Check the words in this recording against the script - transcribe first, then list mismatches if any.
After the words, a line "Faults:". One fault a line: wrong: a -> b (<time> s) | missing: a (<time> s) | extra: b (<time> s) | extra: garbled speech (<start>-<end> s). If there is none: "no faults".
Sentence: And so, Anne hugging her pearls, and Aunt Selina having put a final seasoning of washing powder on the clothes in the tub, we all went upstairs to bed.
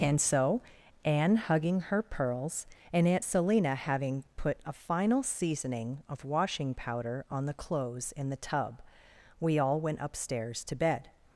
And so, Anne hugging her pearls, and Aunt Selina having put a final seasoning of washing powder on the clothes in the tub, we all went upstairs to bed.
Faults:
no faults